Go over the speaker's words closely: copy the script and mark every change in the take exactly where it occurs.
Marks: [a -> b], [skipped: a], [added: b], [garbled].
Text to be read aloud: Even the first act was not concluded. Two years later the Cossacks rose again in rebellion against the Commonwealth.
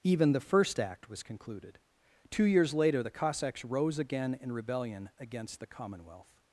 Even the first act was [skipped: not] concluded. Two years later the Cossacks rose again in rebellion against the Commonwealth.